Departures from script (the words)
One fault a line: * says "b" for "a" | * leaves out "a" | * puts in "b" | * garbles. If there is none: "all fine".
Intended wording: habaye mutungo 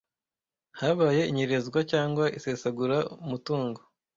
* puts in "inyerezwa cyangwa isesagura"